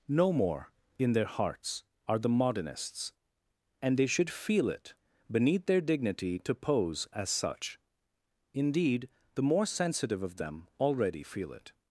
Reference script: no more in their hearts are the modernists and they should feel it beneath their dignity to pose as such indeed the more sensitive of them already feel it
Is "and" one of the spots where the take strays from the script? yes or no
no